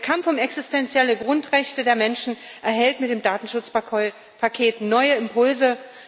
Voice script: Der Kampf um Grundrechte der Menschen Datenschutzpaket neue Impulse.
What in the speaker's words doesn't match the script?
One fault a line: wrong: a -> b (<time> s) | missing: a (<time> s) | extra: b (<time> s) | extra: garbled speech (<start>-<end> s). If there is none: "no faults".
extra: existenzielle (0.4 s)
extra: erhält mit dem (2.6 s)